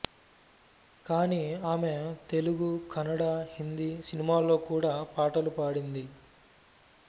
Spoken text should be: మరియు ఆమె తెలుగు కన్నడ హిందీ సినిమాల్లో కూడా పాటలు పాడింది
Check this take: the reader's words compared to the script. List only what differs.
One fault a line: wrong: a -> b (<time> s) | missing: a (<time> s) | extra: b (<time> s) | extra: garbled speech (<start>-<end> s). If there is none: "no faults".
wrong: మరియు -> కానీ (1.1 s)